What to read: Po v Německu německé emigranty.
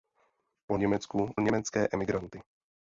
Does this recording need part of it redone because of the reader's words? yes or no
no